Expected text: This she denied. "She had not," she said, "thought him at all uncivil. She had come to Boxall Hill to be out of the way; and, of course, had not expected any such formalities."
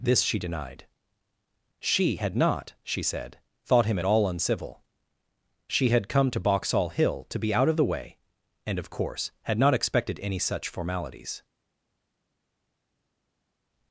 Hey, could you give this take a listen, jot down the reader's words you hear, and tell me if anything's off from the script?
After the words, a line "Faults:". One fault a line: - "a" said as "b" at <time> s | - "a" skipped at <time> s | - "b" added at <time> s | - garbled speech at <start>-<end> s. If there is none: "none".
This she denied. "She had not," she said, "thought him at all uncivil. She had come to Boxall Hill to be out of the way; and, of course, had not expected any such formalities."
Faults:
none